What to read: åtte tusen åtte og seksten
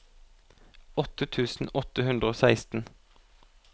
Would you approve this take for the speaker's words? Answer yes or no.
no